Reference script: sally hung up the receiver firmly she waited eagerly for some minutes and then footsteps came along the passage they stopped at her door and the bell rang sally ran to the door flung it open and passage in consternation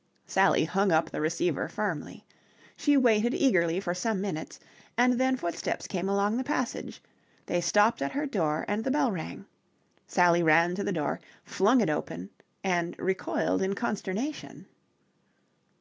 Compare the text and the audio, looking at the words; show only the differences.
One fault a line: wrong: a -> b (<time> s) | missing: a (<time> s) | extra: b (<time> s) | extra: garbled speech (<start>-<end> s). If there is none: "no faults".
wrong: passage -> recoiled (13.0 s)